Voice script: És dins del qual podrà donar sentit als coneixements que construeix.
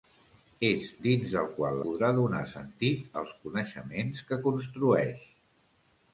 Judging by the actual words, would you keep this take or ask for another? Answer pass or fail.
pass